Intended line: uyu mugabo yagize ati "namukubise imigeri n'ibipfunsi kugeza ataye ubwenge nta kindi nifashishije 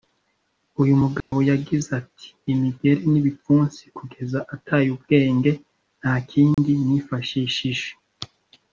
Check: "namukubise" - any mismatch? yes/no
yes